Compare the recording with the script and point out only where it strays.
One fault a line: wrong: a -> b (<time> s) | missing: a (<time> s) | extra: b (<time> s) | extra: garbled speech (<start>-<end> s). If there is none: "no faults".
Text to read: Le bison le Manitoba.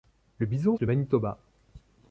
no faults